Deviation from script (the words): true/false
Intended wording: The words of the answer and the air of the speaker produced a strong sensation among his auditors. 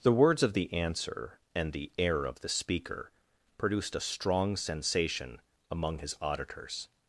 false